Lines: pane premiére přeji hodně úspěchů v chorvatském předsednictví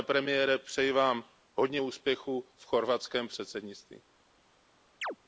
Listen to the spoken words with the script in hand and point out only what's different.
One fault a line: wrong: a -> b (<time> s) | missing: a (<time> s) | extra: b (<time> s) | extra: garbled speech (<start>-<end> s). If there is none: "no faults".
extra: vám (0.9 s)